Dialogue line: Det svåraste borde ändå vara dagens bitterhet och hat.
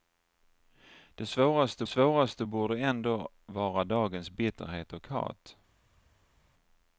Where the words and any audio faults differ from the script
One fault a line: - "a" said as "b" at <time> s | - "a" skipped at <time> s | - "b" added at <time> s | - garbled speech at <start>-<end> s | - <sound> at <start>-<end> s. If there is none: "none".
- "svåraste" added at 1.8 s